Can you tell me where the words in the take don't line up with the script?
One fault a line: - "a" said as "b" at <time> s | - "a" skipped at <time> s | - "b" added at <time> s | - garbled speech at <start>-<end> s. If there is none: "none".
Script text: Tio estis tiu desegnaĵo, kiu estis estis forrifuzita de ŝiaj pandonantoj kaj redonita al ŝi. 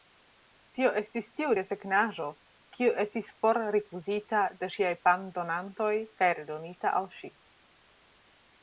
- "estis" skipped at 3.3 s